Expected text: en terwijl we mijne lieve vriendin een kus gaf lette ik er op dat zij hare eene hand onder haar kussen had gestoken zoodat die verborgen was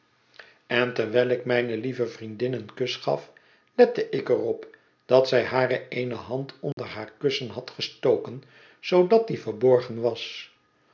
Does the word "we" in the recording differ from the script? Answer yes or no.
yes